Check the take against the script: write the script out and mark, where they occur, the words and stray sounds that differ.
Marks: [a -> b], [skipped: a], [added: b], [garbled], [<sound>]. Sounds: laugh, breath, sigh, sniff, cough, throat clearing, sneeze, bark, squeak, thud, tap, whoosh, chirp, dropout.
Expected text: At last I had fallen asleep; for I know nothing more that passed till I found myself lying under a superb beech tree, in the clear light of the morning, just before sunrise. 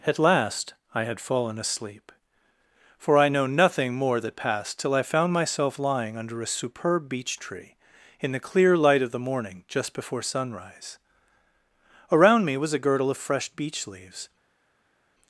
At last I had fallen asleep; for I know nothing more that passed till I found myself lying under a superb beech tree, in the clear light of the morning, just before sunrise. [added: Around me was a girdle of fresh beech leaves]